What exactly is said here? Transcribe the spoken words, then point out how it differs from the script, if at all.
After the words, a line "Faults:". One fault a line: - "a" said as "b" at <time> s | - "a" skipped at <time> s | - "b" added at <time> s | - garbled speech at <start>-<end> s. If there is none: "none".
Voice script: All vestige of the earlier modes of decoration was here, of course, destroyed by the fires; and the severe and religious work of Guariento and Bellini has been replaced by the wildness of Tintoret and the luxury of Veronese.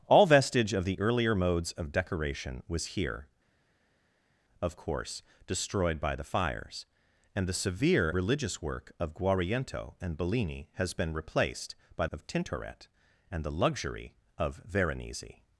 All vestige of the earlier modes of decoration was here, of course, destroyed by the fires; and the severe religious work of Guariento and Bellini has been replaced by of Tintoret and the luxury of Veronese.
Faults:
- "and" skipped at 8.1 s
- "the wildness" skipped at 12.1 s